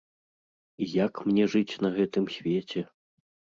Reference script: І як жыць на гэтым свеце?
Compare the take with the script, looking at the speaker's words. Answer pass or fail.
fail